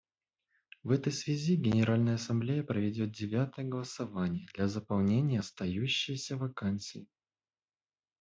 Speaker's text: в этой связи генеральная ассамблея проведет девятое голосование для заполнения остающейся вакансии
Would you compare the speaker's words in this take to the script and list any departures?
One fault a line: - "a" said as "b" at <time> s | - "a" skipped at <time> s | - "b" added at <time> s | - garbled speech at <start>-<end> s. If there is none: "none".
none